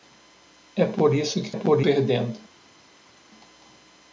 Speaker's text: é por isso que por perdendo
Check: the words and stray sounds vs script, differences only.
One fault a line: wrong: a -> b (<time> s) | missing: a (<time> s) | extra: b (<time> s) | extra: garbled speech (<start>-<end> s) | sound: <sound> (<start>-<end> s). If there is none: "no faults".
no faults